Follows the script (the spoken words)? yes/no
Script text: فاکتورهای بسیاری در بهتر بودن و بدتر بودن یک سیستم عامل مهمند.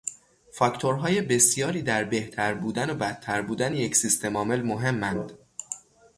yes